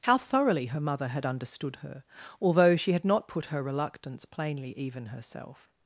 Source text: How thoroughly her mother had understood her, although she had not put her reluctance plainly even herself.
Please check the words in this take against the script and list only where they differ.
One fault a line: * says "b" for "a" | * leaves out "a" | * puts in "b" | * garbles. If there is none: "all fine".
all fine